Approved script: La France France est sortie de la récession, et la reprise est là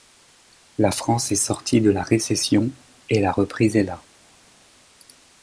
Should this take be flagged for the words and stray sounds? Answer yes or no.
yes